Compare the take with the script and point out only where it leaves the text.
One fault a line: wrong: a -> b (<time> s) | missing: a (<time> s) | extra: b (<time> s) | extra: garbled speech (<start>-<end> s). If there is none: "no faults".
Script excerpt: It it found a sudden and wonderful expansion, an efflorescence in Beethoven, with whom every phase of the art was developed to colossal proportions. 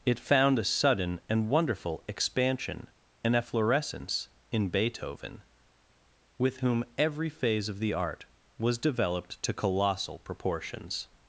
missing: it (0.2 s)